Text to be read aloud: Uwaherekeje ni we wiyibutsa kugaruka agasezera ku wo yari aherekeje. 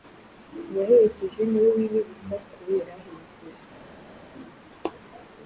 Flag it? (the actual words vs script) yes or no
yes